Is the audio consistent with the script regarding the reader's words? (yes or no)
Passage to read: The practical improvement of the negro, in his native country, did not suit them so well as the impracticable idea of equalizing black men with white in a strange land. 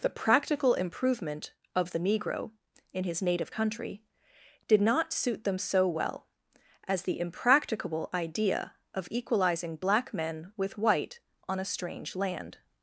no